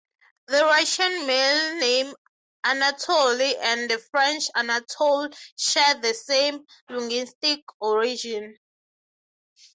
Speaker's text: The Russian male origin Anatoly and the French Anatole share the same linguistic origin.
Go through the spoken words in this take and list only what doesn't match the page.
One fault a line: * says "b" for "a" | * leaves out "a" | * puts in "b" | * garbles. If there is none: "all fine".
* says "name" for "origin"